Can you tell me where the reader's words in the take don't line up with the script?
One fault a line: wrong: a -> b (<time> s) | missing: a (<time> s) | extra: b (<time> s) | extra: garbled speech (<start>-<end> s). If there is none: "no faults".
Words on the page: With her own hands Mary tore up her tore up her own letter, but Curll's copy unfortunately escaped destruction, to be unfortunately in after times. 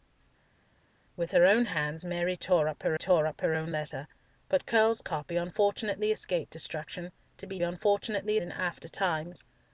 no faults